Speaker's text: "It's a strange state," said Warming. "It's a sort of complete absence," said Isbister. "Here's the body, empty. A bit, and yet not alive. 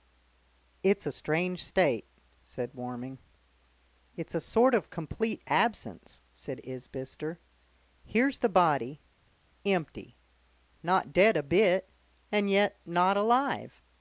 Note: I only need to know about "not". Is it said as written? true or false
true